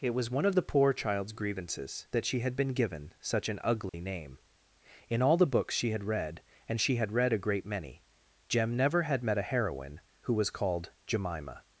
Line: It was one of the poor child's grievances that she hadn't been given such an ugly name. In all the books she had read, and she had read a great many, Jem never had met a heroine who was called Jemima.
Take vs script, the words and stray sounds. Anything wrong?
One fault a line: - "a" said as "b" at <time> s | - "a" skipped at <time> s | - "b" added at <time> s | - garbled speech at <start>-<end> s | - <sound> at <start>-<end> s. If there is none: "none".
- "hadn't" said as "had" at 2.4 s
- dropout at 3.9-3.9 s